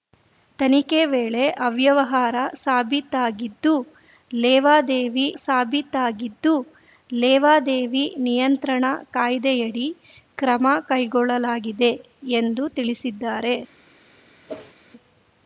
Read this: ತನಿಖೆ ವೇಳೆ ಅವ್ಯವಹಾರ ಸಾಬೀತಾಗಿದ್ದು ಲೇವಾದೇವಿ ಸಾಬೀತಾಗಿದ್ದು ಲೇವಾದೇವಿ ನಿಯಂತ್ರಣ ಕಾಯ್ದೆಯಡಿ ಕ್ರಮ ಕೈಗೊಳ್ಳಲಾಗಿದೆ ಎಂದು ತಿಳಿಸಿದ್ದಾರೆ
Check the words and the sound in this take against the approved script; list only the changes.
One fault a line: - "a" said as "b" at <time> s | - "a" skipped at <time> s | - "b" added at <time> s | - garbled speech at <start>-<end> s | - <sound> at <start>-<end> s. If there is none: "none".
- whoosh at 14.5-14.7 s